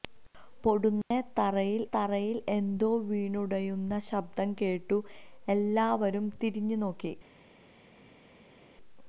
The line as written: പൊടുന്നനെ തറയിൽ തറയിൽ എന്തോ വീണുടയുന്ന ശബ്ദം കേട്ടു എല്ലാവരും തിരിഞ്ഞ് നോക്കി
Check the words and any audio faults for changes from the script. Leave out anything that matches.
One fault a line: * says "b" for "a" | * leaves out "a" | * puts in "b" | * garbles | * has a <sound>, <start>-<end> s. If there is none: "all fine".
all fine